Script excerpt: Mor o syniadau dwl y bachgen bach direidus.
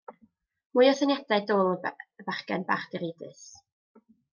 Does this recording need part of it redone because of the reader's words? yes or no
yes